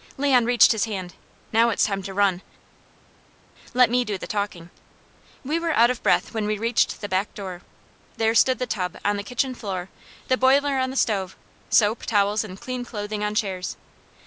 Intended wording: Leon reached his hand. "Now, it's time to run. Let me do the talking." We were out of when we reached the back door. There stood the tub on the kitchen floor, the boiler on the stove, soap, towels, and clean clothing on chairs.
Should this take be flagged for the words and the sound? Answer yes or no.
yes